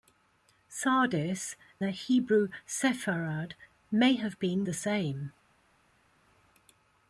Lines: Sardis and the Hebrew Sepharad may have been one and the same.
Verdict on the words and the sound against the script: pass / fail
fail